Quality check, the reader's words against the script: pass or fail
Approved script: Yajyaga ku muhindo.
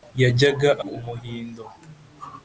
pass